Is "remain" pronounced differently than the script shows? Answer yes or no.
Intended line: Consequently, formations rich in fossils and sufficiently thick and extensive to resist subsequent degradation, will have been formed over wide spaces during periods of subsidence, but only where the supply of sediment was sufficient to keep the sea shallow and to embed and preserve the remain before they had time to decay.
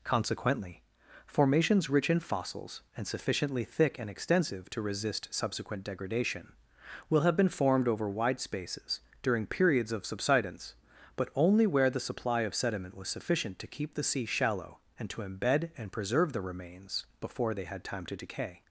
yes